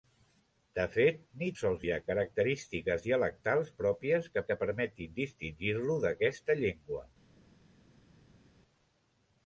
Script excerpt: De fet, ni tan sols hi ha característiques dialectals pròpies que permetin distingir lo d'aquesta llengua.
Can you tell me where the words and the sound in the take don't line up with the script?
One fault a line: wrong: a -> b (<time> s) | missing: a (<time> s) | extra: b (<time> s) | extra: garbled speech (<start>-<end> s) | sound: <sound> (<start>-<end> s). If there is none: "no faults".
missing: tan (1.5 s)
extra: que (4.5 s)